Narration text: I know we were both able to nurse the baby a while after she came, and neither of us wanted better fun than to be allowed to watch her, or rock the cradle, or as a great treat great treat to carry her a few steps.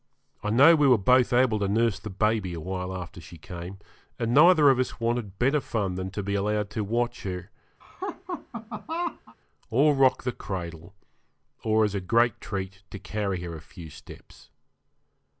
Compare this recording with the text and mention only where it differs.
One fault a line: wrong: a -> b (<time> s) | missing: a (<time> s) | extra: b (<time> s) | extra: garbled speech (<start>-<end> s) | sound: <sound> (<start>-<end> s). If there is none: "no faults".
sound: laugh (7.8-9.4 s)
missing: great treat (12.8 s)